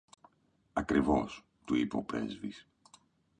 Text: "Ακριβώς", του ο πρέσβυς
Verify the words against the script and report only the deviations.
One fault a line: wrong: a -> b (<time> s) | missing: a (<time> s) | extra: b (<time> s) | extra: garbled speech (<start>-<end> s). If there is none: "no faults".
extra: είπε (1.8 s)